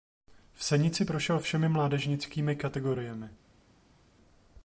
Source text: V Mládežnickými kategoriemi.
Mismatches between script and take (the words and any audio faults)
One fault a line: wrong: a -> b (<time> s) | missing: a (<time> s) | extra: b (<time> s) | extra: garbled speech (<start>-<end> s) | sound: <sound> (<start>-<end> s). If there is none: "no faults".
extra: Senici prošel všemi (0.6 s)